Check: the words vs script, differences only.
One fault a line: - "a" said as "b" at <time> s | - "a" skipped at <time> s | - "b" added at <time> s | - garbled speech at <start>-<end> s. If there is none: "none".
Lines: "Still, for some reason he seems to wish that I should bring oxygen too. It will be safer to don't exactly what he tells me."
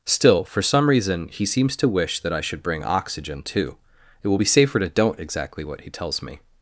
none